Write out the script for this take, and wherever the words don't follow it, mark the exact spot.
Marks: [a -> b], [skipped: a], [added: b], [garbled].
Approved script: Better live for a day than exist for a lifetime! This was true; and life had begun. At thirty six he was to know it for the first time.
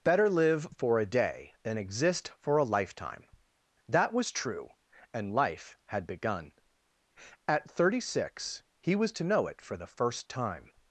Better live for a day than exist for a lifetime! [This -> That] was true; and life had begun. At thirty six he was to know it for the first time.